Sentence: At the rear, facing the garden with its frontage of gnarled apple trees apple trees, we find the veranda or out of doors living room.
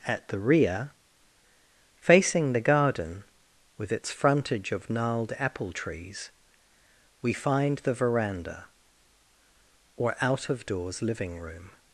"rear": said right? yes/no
yes